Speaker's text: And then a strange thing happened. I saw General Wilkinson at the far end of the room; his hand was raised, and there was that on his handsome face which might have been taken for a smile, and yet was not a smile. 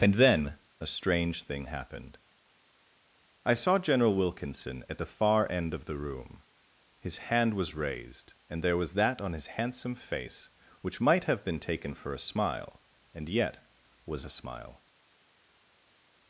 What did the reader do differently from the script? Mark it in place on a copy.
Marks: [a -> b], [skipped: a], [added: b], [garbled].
And then a strange thing happened. I saw General Wilkinson at the far end of the room; his hand was raised, and there was that on his handsome face which might have been taken for a smile, and yet was [skipped: not] a smile.